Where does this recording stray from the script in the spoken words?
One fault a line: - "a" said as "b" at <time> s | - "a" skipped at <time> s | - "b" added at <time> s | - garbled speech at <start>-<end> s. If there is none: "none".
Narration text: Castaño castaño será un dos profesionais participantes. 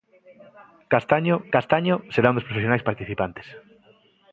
none